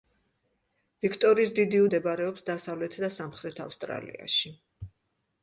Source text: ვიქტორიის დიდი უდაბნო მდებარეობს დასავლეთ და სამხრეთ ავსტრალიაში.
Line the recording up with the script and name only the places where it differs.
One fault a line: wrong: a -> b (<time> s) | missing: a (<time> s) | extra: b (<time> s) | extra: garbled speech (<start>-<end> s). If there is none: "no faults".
missing: უდაბნო (1.8 s)